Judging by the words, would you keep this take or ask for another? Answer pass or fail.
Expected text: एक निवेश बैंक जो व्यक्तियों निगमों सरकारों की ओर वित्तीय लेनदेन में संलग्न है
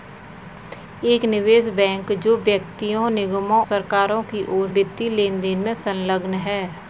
pass